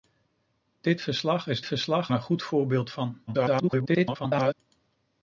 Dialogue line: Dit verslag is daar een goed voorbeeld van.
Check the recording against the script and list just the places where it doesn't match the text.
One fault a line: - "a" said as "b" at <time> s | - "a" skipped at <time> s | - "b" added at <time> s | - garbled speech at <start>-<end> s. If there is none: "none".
- "daar" said as "verslag" at 1.6 s
- garbled speech at 3.3-4.5 s